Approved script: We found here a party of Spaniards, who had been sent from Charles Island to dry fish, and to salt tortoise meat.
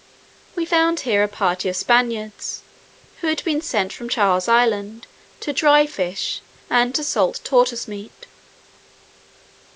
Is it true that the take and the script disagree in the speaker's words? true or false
false